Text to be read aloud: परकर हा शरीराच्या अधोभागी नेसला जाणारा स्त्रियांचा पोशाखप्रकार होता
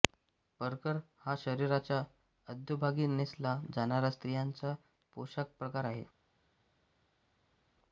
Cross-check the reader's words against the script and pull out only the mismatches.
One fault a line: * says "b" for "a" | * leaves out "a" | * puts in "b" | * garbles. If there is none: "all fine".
* says "आहे" for "होता"